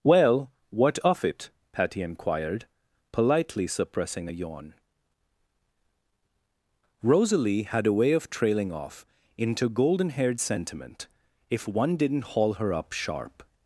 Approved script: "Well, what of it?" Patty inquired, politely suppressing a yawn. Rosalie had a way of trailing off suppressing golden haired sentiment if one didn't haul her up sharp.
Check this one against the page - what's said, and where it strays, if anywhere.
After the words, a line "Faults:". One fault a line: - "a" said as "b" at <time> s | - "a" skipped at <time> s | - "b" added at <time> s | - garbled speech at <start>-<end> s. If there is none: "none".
"Well, what of it?" Patty inquired, politely suppressing a yawn. Rosalie had a way of trailing off into golden haired sentiment if one didn't haul her up sharp.
Faults:
- "suppressing" said as "into" at 9.4 s